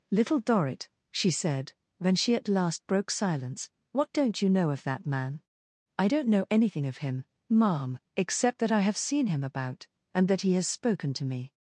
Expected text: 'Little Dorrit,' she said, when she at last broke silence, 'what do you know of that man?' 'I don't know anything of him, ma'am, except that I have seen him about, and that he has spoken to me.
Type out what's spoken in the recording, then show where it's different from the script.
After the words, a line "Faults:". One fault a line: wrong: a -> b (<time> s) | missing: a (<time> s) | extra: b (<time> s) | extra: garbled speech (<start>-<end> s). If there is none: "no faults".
'Little Dorrit,' she said, when she at last broke silence, 'what don't you know of that man?' 'I don't know anything of him, ma'am, except that I have seen him about, and that he has spoken to me.
Faults:
wrong: do -> don't (4.1 s)